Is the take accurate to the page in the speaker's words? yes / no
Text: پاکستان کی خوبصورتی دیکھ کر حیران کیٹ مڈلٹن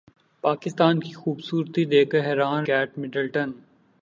yes